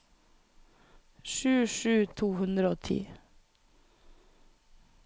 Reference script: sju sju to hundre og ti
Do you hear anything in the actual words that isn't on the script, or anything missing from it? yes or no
no